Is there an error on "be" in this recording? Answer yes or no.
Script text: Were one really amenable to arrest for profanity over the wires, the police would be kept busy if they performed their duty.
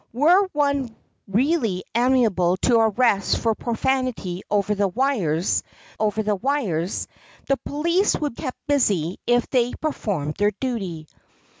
yes